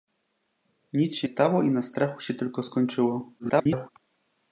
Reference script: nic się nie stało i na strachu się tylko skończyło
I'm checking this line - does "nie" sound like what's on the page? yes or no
no